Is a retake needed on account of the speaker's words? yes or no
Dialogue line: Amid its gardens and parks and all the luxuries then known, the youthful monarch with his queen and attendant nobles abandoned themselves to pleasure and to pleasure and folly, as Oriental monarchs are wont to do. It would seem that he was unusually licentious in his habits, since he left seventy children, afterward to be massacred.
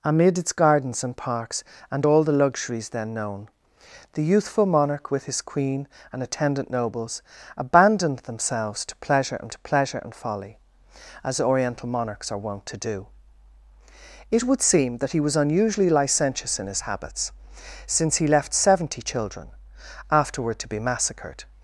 no